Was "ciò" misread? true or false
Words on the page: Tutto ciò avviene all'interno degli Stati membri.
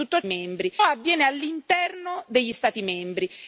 true